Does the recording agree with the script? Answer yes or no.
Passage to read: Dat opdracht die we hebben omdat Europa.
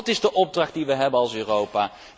no